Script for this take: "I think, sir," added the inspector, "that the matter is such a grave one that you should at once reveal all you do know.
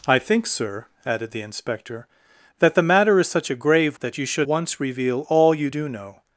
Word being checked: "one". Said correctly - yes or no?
no